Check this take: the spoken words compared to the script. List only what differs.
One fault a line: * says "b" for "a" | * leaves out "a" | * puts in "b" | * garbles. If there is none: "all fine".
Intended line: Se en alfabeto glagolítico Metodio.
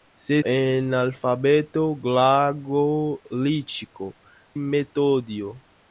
all fine